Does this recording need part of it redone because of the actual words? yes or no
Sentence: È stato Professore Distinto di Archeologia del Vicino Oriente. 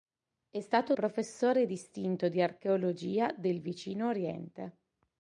no